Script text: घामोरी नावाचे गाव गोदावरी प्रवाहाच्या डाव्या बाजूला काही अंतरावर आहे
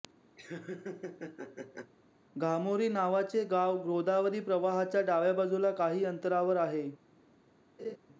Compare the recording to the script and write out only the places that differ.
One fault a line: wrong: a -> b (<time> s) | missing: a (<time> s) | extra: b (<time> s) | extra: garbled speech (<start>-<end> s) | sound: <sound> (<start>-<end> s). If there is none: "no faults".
sound: laugh (0.4-1.9 s)
sound: laugh (7.8-8.0 s)